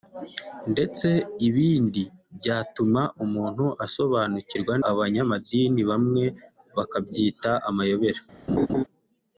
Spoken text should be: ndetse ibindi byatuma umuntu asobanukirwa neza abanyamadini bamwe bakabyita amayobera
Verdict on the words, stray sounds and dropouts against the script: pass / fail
fail